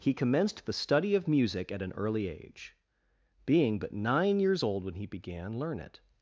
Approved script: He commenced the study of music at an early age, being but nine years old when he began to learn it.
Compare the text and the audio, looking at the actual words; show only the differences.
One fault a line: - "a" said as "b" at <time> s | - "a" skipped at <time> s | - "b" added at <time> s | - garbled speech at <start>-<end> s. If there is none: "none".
- "to" skipped at 5.6 s